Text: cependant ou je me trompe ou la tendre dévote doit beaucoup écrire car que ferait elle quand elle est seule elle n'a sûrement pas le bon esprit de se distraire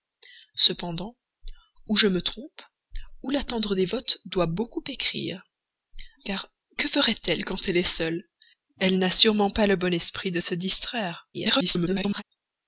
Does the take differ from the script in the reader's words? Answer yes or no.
yes